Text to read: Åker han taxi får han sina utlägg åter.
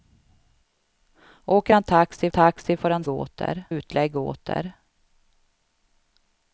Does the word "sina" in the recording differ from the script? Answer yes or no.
yes